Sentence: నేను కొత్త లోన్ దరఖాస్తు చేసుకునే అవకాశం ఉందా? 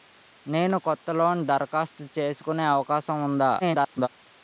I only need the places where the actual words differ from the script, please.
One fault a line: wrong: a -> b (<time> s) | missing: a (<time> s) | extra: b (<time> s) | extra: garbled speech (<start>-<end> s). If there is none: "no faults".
extra: garbled speech (3.6-4.1 s)